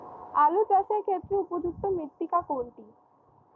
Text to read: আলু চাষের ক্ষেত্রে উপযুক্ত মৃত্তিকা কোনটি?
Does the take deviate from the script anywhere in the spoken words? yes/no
no